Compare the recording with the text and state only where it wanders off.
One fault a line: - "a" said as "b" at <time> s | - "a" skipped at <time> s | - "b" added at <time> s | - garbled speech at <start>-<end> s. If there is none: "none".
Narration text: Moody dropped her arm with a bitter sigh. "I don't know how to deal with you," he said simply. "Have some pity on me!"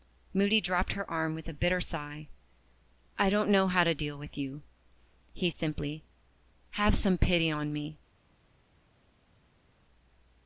- "said" skipped at 5.5 s